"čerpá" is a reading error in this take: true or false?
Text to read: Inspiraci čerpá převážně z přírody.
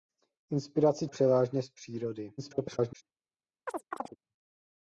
true